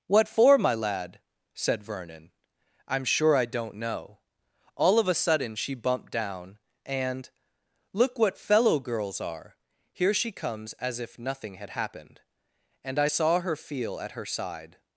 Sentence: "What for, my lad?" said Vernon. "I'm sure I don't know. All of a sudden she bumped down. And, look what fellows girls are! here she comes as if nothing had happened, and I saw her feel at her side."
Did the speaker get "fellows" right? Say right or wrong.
wrong